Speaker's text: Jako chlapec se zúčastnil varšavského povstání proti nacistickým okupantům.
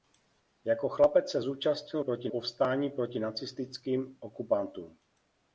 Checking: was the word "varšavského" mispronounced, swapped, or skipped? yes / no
yes